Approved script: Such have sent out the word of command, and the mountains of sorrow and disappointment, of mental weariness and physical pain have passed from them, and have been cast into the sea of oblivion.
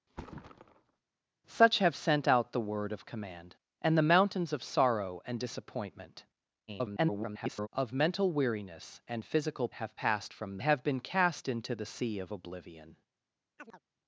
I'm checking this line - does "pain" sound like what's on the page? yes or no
no